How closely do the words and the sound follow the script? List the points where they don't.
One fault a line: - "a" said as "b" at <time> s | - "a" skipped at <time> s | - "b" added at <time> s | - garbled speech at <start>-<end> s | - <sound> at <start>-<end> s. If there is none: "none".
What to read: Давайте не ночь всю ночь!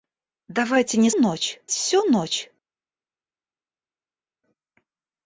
none